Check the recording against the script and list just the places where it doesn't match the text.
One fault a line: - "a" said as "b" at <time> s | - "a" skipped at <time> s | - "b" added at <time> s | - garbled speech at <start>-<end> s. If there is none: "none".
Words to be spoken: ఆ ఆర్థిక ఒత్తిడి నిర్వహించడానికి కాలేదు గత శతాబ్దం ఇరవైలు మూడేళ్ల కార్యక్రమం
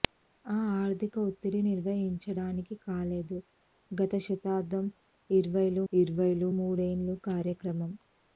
- "ఇరవైలు" added at 5.9 s